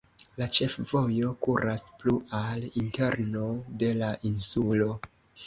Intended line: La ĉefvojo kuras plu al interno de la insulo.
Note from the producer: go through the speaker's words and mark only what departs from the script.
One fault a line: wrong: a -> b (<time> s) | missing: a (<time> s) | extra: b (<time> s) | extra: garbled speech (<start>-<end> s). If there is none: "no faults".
no faults